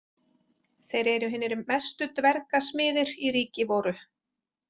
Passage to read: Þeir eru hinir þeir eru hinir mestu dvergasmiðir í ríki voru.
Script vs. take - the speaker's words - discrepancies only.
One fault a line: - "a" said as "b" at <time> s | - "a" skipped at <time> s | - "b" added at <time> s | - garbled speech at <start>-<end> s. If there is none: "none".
- "þeir eru hinir" skipped at 1.6 s